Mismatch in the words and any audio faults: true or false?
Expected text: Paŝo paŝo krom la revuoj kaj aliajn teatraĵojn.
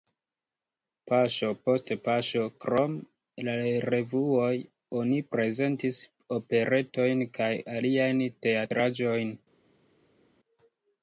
true